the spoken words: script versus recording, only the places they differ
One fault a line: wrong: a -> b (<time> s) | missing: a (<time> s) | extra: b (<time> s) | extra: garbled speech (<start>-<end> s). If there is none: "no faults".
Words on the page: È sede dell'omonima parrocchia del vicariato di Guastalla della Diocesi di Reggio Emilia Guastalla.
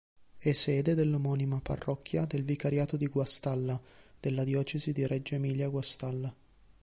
no faults